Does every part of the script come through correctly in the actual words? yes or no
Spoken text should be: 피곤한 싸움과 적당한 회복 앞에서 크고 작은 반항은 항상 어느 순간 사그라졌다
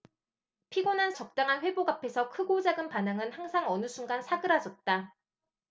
no